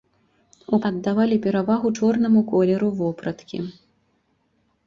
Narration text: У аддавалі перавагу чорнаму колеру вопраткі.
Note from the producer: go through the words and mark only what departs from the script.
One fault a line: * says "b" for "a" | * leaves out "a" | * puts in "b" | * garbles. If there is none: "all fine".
all fine